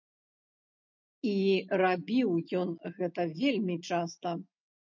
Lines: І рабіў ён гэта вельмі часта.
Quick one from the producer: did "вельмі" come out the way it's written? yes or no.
yes